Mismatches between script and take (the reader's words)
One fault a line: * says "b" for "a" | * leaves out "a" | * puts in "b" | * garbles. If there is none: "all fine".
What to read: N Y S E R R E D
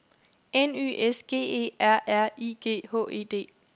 * puts in "G"
* puts in "I G H"